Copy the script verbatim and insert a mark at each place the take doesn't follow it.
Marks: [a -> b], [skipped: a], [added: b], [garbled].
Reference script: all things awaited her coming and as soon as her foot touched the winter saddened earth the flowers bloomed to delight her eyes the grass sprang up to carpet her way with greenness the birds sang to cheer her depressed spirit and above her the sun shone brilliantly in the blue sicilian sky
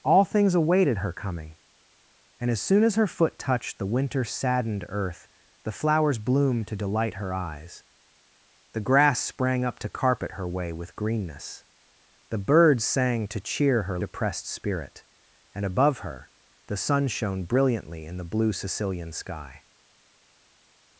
all things awaited her coming and as soon as her foot touched the winter saddened earth the flowers bloomed to delight her eyes the grass sprang up to carpet her way with greenness the birds sang to cheer her depressed spirit and above her the sun shone brilliantly in the blue sicilian sky